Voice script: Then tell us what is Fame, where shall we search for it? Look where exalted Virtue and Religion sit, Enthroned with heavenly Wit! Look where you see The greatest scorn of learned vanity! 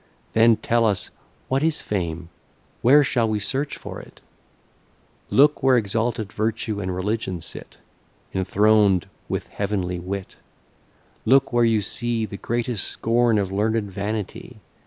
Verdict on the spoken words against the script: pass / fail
pass